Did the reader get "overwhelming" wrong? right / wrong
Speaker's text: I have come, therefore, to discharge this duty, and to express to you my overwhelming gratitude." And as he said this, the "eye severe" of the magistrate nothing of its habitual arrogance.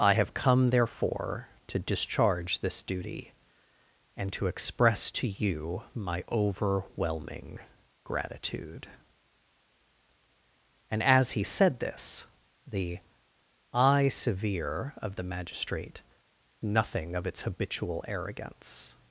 right